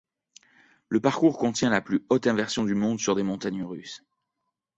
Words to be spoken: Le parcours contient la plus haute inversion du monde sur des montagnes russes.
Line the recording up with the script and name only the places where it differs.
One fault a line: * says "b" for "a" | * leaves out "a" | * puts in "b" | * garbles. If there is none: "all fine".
all fine